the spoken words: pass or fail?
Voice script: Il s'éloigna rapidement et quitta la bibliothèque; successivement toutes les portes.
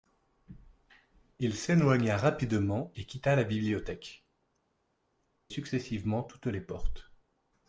pass